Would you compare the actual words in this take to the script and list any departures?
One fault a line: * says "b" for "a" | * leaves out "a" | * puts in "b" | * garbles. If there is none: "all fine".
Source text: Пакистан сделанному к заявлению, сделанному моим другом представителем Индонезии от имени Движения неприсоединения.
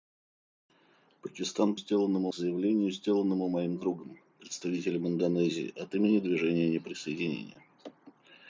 all fine